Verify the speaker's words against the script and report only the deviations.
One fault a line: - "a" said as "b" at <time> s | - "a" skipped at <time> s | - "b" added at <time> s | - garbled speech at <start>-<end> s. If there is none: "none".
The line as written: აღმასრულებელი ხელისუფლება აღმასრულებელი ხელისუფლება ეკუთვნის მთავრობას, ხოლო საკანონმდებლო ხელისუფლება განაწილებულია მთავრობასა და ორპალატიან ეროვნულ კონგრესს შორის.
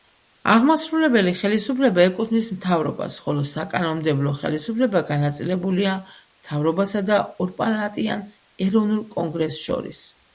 - "აღმასრულებელი ხელისუფლება" skipped at 2.0 s